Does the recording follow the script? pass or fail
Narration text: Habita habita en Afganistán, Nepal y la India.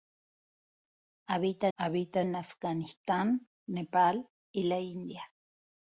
pass